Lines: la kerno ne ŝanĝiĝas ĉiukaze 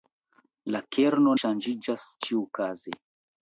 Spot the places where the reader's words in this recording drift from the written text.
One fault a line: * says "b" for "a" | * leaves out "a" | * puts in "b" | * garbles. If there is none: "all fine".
* leaves out "ne"